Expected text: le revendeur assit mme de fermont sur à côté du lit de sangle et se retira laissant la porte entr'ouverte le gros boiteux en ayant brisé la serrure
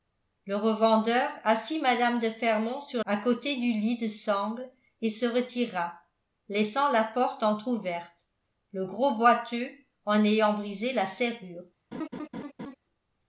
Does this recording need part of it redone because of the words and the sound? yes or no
yes